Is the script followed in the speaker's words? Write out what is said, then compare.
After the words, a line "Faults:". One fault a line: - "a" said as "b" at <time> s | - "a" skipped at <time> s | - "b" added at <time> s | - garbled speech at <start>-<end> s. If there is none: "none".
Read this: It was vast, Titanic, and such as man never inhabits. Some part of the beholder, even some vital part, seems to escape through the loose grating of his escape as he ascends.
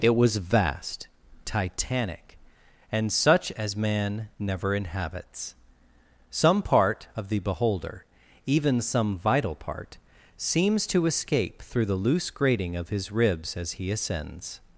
It was vast, Titanic, and such as man never inhabits. Some part of the beholder, even some vital part, seems to escape through the loose grating of his ribs as he ascends.
Faults:
- "escape" said as "ribs" at 13.1 s